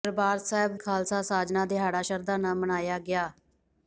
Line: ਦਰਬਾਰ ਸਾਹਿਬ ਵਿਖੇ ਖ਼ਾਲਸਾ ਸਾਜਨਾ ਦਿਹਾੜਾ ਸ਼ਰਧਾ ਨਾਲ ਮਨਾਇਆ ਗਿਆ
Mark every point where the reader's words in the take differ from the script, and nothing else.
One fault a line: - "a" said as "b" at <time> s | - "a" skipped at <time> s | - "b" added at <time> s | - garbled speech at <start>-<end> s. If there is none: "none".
- "ਵਿਖੇ" skipped at 0.8 s